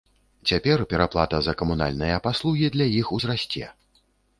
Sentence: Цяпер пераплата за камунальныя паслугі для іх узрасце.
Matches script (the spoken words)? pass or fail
pass